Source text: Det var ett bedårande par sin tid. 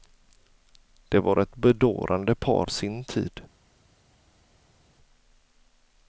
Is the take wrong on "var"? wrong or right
right